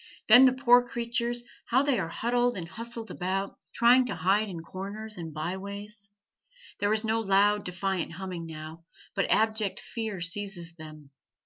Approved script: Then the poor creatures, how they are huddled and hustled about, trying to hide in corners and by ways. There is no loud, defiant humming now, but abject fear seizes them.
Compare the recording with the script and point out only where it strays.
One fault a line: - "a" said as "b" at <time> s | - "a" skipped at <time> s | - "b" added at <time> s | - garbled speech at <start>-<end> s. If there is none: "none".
none